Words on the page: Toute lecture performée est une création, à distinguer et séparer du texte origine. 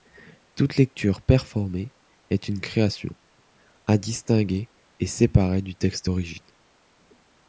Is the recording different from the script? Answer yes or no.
no